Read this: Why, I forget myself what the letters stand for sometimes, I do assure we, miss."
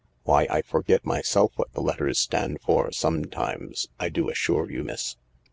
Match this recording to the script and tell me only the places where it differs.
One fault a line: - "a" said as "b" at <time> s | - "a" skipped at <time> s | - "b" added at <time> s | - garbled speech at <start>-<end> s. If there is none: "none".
- "we" said as "you" at 4.7 s